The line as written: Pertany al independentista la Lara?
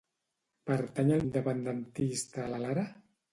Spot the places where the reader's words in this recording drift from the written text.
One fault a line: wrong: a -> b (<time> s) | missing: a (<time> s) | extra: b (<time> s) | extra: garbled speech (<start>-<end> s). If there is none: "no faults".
no faults